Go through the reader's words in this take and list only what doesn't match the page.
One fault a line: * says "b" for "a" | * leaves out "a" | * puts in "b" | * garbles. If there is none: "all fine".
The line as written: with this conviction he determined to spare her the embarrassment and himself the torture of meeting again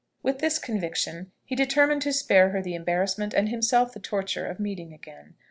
all fine